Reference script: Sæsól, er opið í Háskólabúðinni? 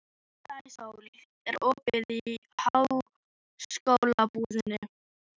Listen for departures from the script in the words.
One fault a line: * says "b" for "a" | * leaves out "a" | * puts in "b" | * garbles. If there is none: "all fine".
all fine